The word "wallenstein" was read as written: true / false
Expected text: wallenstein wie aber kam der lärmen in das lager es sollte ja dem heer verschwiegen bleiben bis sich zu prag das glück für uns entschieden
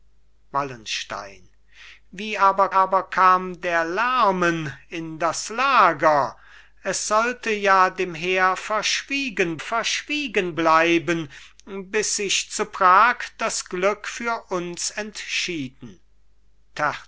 true